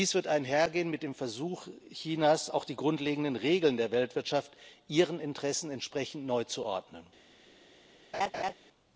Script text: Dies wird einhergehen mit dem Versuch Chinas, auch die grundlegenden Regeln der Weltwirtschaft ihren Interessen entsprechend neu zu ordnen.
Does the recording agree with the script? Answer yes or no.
yes